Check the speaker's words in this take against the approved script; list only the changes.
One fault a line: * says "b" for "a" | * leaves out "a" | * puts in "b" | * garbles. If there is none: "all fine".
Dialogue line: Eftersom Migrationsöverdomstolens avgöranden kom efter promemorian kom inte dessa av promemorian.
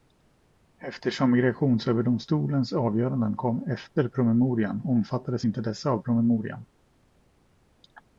* says "omfattades" for "kom"